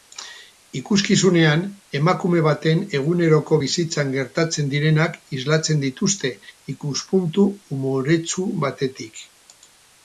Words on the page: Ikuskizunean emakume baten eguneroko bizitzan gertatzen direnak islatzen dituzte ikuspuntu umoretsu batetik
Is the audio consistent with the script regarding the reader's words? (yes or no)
yes